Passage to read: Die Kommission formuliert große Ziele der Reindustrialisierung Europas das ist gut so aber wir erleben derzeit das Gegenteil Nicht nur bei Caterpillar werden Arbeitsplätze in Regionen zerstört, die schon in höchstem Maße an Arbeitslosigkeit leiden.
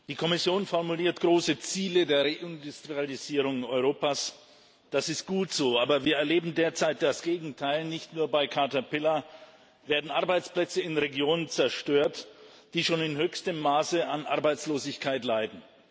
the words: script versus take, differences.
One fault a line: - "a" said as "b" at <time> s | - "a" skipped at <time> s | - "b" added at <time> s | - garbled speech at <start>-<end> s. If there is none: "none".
none